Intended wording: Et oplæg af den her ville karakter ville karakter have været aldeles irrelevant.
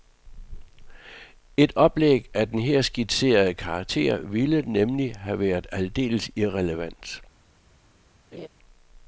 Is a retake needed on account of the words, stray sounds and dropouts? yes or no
yes